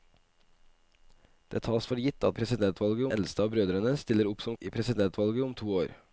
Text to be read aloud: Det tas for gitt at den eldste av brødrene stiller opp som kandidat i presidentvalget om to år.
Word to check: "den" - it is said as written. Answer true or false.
false